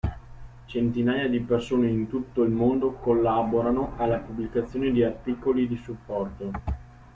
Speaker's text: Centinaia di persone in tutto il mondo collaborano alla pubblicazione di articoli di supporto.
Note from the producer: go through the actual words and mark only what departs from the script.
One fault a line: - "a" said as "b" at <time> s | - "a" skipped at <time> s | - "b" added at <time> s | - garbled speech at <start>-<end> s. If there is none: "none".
none